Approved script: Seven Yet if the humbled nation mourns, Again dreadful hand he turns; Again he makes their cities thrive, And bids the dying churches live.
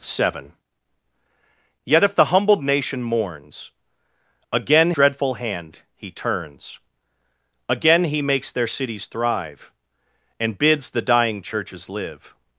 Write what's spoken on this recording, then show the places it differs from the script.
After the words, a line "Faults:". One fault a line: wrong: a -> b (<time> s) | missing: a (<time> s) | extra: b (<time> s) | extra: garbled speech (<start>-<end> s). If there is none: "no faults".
Seven Yet if the humbled nation mourns, Again dreadful hand he turns; Again he makes their cities thrive, And bids the dying churches live.
Faults:
no faults